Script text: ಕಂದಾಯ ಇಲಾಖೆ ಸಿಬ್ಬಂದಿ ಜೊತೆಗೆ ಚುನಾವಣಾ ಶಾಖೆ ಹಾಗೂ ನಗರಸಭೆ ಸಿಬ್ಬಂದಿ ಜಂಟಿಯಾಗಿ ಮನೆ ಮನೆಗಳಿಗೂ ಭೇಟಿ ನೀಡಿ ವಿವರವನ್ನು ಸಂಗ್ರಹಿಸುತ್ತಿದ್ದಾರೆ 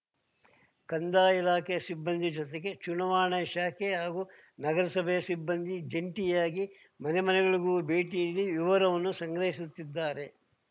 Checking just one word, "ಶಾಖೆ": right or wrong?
right